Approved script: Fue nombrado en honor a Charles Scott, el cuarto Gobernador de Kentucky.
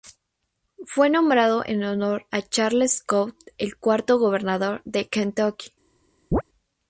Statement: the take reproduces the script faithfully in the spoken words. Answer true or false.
true